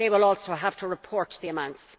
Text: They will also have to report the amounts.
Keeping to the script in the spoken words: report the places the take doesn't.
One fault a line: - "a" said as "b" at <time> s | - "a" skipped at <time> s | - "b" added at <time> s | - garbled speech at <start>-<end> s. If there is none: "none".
none